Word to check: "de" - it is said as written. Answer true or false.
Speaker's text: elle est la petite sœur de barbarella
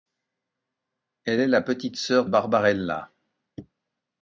false